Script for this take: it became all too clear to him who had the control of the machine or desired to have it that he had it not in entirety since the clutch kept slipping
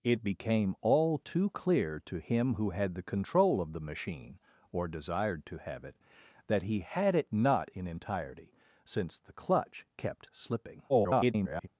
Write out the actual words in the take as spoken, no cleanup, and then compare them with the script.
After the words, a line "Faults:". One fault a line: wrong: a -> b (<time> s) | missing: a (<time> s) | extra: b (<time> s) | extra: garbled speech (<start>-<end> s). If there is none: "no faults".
it became all too clear to him who had the control of the machine or desired to have it that he had it not in entirety since the clutch kept slipping [garbled]
Faults:
extra: garbled speech (10.9-11.7 s)